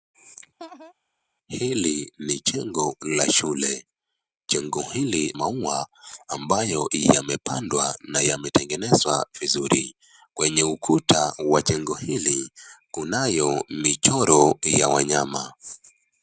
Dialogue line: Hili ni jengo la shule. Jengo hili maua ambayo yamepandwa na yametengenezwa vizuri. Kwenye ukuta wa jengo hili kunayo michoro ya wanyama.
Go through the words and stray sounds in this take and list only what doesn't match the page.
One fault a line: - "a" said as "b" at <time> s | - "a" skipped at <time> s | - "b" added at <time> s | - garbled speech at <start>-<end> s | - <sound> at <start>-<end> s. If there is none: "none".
- laugh at 0.6-0.9 s